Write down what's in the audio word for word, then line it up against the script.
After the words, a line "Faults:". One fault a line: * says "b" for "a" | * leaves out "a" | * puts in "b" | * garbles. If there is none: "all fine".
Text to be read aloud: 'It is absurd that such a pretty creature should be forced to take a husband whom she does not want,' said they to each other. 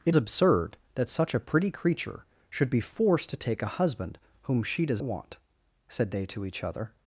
'It absurd that such a pretty creature should be forced to take a husband whom she does want,' said they to each other.
Faults:
* leaves out "is"
* leaves out "not"